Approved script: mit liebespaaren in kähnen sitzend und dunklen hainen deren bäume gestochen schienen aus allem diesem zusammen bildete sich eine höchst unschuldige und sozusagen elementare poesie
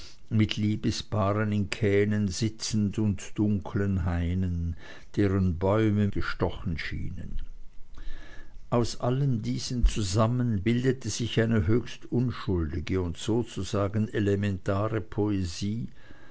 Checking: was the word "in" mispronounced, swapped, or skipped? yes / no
no